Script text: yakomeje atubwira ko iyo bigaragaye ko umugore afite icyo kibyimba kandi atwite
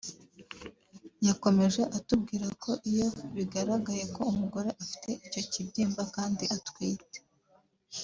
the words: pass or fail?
pass